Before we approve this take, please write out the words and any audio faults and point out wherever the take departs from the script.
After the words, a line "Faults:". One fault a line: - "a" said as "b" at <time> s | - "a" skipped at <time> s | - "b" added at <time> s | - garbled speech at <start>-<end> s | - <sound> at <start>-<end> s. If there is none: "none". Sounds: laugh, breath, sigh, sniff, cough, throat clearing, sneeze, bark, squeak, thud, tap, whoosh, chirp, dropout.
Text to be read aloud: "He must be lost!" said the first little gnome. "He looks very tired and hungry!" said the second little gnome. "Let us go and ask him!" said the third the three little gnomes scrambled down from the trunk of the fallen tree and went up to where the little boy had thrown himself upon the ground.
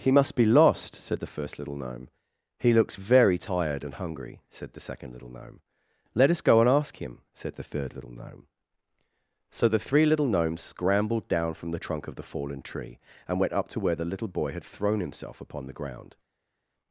"He must be lost!" said the first little gnome. "He looks very tired and hungry!" said the second little gnome. "Let us go and ask him!" said the third little gnome. So the three little gnomes scrambled down from the trunk of the fallen tree and went up to where the little boy had thrown himself upon the ground.
Faults:
- "little gnome So" added at 8.0 s